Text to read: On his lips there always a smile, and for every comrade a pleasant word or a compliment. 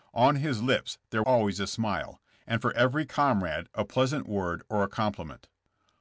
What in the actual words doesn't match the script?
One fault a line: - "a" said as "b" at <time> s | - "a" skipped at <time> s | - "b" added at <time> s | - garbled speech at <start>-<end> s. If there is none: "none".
none